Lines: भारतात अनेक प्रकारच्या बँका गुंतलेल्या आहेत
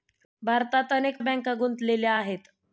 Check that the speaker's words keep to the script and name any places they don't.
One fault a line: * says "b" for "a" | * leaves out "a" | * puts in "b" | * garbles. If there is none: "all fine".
* leaves out "प्रकारच्या"